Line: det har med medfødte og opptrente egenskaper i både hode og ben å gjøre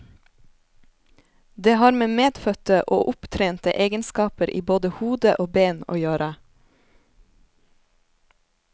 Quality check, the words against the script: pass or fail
pass